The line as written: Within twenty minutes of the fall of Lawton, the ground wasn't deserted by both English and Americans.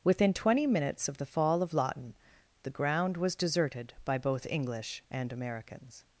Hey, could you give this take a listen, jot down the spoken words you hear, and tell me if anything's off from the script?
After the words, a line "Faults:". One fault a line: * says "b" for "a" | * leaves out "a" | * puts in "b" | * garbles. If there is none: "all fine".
Within twenty minutes of the fall of Lawton, the ground was deserted by both English and Americans.
Faults:
* says "was" for "wasn't"